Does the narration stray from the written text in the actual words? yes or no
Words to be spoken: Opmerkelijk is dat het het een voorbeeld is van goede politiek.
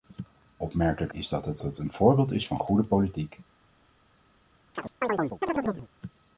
no